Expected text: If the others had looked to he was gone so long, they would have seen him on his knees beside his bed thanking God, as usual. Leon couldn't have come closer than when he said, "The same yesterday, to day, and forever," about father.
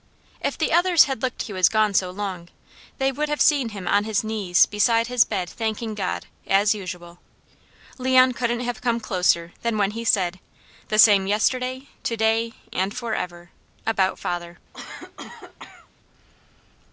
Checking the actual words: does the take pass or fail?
pass